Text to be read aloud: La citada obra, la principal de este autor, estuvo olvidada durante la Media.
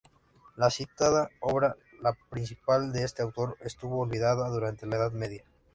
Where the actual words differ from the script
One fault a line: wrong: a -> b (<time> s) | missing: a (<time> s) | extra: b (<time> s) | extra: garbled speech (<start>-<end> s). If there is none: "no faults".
extra: Edad (5.0 s)